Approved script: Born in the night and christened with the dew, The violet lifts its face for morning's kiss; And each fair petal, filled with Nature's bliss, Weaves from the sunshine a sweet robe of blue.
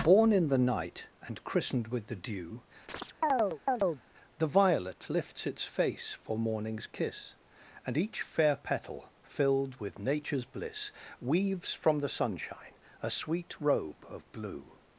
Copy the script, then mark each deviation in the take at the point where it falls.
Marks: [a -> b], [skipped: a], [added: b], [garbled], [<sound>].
Born in the night and christened with the dew, [chirp] The violet lifts its face for morning's kiss; And each fair petal, filled with Nature's bliss, Weaves from the sunshine a sweet robe of blue.